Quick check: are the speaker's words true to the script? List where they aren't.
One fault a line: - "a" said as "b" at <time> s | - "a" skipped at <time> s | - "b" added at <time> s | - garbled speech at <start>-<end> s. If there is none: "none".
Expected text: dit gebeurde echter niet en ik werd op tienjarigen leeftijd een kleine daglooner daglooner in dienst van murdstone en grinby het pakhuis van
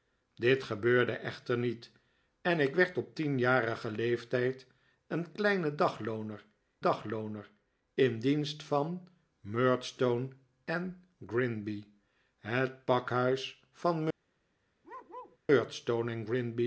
none